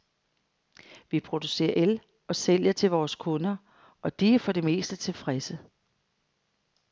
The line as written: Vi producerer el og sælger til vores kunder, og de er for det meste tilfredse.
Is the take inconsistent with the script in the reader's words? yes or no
no